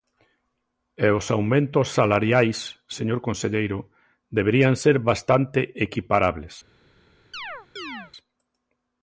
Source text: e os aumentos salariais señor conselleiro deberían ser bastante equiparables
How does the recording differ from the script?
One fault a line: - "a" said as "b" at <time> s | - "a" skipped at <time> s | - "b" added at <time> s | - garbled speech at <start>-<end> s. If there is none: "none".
none